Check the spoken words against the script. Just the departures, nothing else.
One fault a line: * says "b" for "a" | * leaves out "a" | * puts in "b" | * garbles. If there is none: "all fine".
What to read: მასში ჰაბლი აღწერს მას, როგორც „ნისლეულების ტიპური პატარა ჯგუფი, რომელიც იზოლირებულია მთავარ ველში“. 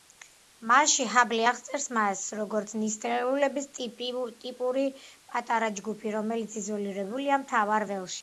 all fine